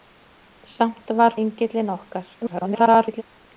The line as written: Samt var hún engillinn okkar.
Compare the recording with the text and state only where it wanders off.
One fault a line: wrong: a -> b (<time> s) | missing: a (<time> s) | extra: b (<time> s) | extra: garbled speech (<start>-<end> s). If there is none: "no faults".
missing: hún (1.4 s)
extra: garbled speech (2.4-3.2 s)